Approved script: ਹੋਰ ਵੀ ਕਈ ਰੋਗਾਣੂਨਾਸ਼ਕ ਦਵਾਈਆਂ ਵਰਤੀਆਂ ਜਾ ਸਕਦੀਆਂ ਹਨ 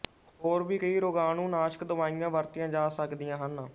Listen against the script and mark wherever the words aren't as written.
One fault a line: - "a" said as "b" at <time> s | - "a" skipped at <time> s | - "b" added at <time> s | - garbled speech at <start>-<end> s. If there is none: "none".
none